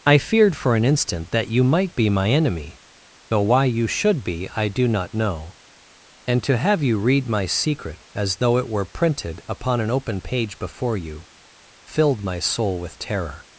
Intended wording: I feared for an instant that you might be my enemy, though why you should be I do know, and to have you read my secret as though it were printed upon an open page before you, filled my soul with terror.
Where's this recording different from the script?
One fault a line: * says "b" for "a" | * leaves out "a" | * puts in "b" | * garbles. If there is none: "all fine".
* puts in "not"